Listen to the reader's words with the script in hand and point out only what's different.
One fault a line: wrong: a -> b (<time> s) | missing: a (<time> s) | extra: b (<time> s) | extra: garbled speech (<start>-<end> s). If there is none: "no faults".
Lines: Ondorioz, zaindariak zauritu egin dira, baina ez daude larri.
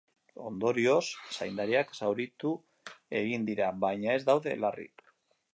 no faults